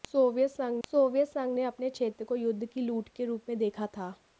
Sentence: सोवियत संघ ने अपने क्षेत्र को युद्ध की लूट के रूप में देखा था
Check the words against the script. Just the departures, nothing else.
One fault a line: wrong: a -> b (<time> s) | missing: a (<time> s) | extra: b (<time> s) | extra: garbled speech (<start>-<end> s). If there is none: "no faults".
extra: सोवियत संघ (0.9 s)